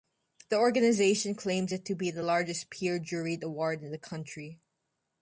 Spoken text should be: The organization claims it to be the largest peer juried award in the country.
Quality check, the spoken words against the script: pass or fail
pass